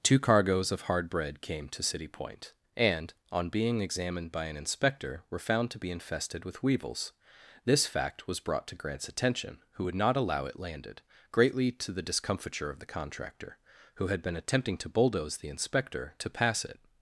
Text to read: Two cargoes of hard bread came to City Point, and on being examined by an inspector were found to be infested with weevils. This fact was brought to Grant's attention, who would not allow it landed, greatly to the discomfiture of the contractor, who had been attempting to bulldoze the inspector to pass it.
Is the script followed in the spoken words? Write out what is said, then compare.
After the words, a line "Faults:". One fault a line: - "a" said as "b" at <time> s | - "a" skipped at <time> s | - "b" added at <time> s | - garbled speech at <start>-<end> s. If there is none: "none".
Two cargoes of hard bread came to City Point, and on being examined by an inspector were found to be infested with weevils. This fact was brought to Grant's attention, who would not allow it landed, greatly to the discomfiture of the contractor, who had been attempting to bulldoze the inspector to pass it.
Faults:
none